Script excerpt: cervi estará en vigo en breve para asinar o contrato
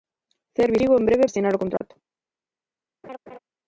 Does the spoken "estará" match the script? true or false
false